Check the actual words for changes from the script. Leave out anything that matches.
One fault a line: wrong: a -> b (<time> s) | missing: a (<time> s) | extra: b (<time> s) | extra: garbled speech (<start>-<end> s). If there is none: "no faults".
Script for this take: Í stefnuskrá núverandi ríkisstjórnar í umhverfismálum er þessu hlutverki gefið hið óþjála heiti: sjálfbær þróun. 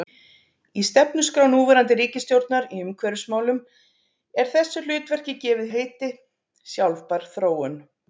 missing: hið óþjála (5.7 s)